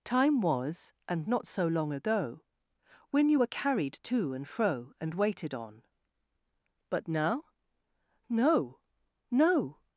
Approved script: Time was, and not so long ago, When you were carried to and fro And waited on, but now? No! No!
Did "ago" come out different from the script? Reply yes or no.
no